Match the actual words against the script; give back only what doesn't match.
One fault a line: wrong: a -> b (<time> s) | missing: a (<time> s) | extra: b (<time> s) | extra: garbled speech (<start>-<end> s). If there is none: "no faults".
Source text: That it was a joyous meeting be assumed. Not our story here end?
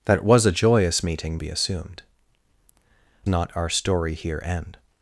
no faults